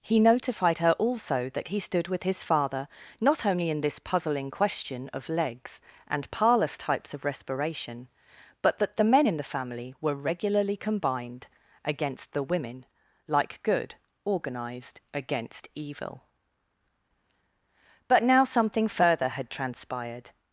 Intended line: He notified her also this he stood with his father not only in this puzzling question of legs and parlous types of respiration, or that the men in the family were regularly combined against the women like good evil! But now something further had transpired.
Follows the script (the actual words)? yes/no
no